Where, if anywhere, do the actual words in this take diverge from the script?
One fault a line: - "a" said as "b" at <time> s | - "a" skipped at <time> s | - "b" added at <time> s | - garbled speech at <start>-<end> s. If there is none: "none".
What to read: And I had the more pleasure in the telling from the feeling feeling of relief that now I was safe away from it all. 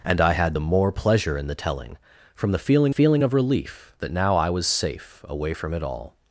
none